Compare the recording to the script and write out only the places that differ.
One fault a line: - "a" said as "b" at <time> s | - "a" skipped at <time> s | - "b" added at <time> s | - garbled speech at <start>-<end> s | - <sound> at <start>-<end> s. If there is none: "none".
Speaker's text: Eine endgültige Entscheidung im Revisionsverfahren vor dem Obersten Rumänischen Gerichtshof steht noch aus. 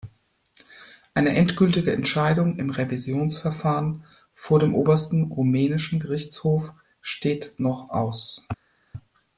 none